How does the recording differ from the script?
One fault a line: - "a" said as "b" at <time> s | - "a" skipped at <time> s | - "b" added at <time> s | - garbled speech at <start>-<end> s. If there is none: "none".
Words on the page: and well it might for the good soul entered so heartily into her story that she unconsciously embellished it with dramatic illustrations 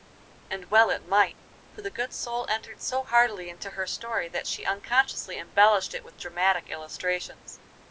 none